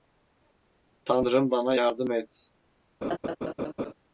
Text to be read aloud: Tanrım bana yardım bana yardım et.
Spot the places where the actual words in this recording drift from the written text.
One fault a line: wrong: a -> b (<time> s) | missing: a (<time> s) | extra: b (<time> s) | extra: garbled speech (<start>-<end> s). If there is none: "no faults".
missing: bana yardım (2.1 s)